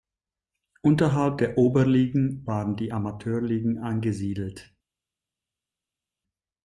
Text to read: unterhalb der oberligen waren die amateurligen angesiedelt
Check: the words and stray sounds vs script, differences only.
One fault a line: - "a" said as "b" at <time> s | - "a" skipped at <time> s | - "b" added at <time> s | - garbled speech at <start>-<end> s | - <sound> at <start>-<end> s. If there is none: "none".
none